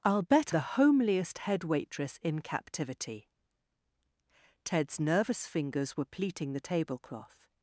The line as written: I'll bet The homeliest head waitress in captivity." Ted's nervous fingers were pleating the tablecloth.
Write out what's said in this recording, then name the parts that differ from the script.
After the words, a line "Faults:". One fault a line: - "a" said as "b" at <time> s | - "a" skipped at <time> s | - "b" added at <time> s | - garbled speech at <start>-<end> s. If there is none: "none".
I'll bet The homeliest head waitress in captivity." Ted's nervous fingers were pleating the tablecloth.
Faults:
none